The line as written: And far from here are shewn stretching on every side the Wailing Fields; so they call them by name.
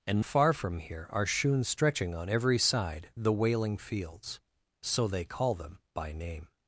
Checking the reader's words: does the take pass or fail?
pass